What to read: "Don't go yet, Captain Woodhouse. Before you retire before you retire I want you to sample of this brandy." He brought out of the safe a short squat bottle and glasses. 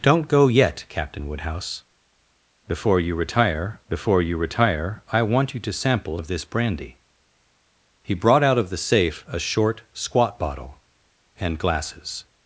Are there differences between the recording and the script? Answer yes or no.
no